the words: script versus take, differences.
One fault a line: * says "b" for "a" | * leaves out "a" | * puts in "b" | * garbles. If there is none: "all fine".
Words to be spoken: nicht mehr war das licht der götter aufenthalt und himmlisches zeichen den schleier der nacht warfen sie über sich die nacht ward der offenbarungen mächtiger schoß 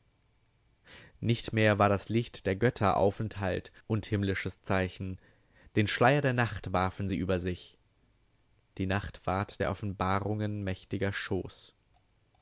all fine